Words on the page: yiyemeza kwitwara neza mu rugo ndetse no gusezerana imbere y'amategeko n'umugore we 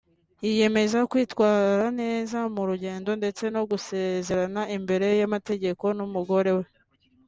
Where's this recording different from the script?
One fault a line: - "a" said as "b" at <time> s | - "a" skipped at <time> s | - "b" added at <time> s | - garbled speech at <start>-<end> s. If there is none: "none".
none